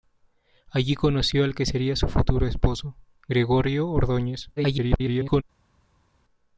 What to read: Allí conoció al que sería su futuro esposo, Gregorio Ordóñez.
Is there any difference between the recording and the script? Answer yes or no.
yes